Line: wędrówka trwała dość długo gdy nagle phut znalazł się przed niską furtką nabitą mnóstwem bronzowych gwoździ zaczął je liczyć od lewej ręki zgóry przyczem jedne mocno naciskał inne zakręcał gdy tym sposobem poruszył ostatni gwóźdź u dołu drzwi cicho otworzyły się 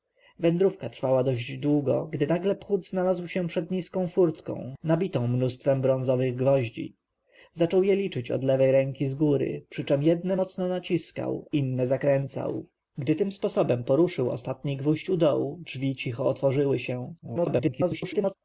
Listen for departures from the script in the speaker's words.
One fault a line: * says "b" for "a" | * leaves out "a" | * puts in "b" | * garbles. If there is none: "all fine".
* garbles